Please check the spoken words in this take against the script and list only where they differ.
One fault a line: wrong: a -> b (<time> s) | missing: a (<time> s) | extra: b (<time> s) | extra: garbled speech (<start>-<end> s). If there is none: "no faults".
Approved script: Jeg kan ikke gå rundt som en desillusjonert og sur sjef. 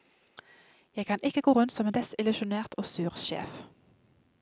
no faults